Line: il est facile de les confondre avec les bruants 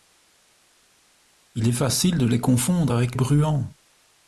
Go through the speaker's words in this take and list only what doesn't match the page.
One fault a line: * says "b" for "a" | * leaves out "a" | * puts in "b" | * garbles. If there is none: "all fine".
* leaves out "les"